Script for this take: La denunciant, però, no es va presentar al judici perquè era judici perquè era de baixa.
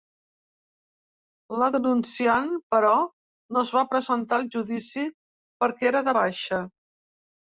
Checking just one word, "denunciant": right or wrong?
right